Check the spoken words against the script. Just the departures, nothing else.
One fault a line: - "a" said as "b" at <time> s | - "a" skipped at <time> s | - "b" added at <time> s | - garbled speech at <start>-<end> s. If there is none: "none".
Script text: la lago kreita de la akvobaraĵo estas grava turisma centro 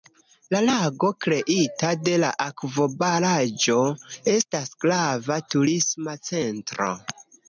none